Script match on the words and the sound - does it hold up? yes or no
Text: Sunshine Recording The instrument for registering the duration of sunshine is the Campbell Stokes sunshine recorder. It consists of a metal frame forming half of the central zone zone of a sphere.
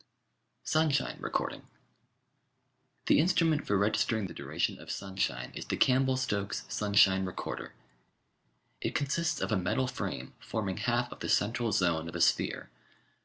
no